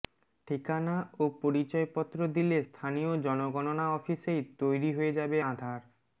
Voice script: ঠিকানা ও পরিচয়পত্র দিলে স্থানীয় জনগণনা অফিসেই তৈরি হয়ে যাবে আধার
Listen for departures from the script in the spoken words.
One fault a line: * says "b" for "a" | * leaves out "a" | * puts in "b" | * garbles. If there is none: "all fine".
all fine